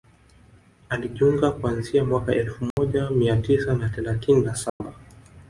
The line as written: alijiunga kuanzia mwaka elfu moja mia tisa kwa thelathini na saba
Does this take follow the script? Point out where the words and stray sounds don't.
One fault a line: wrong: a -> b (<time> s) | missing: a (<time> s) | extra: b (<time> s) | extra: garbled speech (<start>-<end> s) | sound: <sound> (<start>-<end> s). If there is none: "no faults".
sound: dropout (2.7-2.8 s)
wrong: kwa -> na (3.7 s)
sound: dropout (4.7-4.8 s)